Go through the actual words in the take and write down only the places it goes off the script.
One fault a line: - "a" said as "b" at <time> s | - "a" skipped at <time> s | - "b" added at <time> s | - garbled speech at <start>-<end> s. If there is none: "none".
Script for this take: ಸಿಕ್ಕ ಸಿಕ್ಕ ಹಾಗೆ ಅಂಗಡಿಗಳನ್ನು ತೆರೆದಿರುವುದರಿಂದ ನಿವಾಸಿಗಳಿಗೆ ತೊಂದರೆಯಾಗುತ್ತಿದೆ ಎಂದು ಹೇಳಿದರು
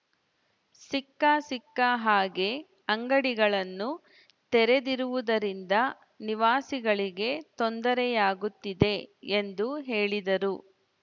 none